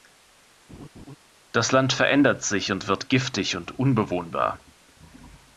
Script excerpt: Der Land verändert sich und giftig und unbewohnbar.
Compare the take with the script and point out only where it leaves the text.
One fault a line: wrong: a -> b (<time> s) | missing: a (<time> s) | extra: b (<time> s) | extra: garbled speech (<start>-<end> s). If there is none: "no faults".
wrong: Der -> Das (1.5 s)
extra: wird (2.9 s)